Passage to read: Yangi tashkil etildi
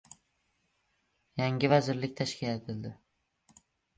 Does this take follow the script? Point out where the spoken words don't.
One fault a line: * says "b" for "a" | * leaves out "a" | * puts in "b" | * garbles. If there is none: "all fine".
* puts in "vazirlik"